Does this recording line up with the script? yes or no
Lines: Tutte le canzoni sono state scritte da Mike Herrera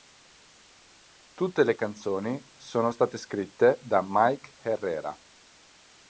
yes